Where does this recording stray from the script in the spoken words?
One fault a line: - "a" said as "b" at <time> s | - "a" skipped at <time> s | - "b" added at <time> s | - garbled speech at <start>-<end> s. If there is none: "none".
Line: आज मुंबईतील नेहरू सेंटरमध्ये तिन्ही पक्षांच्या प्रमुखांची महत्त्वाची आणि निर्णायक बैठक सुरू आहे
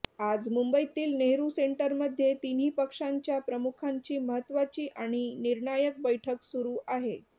none